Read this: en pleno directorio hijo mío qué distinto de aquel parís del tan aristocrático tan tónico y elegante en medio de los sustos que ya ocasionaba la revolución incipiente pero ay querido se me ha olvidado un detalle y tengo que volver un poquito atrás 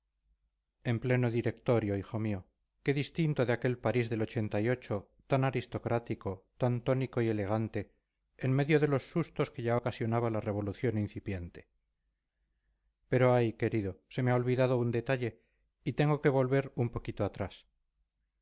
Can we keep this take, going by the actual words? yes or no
yes